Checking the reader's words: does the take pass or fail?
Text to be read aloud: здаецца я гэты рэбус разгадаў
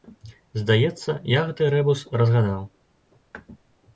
pass